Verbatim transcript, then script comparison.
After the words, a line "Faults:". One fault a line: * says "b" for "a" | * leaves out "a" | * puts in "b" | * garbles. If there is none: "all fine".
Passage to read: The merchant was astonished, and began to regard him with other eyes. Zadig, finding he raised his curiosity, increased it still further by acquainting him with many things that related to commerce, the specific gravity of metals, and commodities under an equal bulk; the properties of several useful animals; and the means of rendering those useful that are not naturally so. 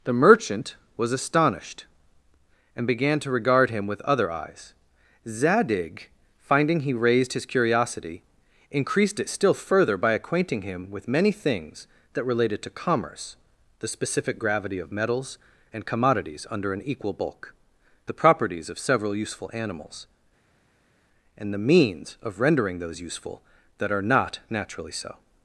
The merchant was astonished, and began to regard him with other eyes. Zadig, finding he raised his curiosity, increased it still further by acquainting him with many things that related to commerce, the specific gravity of metals, and commodities under an equal bulk; the properties of several useful animals; and the means of rendering those useful that are not naturally so.
Faults:
all fine